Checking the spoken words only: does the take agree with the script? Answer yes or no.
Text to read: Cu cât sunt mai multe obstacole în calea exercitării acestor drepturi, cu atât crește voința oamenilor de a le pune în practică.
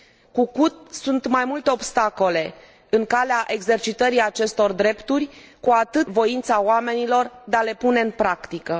no